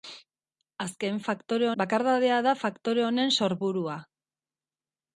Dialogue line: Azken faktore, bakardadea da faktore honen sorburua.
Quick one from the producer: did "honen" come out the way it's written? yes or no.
yes